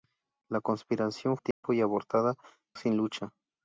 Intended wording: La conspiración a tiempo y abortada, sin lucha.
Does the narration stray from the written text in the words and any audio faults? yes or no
yes